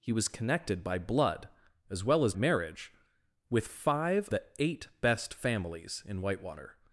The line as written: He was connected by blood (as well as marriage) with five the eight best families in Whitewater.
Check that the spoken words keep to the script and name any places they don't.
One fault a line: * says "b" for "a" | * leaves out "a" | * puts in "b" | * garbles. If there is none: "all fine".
all fine